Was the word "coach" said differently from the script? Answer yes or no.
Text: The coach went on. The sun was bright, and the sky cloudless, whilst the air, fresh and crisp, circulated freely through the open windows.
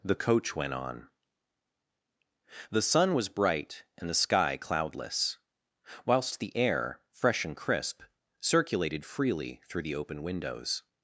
no